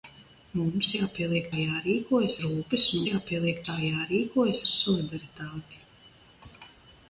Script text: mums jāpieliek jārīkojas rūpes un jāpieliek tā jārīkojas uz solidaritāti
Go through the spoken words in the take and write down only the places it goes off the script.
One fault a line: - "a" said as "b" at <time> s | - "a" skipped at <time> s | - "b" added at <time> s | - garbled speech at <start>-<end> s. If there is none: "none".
none